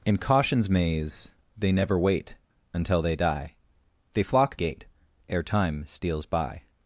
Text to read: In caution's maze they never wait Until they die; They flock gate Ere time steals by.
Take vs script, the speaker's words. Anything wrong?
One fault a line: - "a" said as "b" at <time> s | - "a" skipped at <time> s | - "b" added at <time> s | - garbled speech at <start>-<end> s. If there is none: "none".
none